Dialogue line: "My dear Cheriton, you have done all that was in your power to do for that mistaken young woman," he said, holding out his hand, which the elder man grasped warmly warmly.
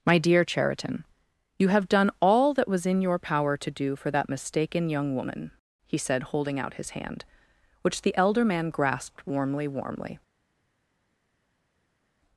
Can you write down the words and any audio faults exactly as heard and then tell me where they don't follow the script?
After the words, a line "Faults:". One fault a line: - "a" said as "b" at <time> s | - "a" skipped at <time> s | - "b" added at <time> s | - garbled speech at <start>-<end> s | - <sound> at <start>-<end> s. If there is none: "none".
"My dear Cheriton, you have done all that was in your power to do for that mistaken young woman," he said, holding out his hand, which the elder man grasped warmly warmly.
Faults:
none